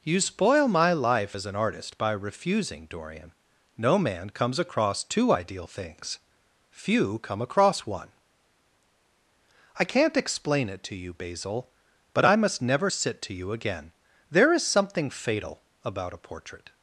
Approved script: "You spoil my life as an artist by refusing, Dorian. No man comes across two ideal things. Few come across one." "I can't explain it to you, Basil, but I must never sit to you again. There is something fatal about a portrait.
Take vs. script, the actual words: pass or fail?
pass